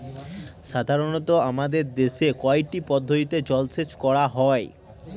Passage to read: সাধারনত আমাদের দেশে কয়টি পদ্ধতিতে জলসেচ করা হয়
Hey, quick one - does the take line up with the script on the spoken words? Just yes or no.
yes